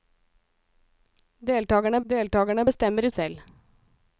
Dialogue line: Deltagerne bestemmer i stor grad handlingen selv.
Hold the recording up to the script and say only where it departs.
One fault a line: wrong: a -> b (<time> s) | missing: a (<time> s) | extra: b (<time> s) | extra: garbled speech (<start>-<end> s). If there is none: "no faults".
extra: deltagerne (2.1 s)
missing: stor grad handlingen (3.1 s)